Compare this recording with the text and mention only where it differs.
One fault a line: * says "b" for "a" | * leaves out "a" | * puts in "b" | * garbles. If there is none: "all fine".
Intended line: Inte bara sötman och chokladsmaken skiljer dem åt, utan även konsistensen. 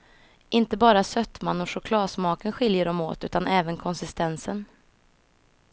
all fine